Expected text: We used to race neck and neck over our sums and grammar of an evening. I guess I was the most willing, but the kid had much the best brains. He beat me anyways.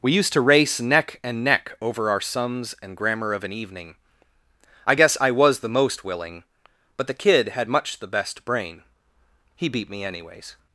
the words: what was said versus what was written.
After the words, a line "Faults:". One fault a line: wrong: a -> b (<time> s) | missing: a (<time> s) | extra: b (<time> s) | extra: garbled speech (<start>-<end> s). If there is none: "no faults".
We used to race neck and neck over our sums and grammar of an evening. I guess I was the most willing, but the kid had much the best brain. He beat me anyways.
Faults:
wrong: brains -> brain (8.4 s)